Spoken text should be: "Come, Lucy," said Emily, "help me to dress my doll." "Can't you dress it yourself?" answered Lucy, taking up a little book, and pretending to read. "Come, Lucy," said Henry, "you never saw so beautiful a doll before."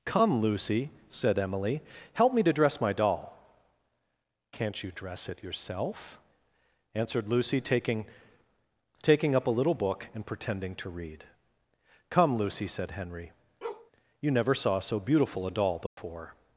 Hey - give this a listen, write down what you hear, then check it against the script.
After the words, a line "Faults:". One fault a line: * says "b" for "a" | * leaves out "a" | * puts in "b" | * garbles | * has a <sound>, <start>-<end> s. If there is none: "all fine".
"Come, Lucy," said Emily, "help me to dress my doll." "Can't you dress it yourself?" answered Lucy, taking taking up a little book, and pretending to read. "Come, Lucy," said Henry, "you never saw so beautiful a doll before."
Faults:
* puts in "taking"
* has a bark, 13.6-13.9 s
* has a dropout, 15.9-16.0 s